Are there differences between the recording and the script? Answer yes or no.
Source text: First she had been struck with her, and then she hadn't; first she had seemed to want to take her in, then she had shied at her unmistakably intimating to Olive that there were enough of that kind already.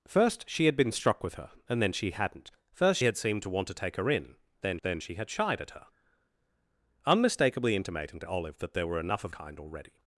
yes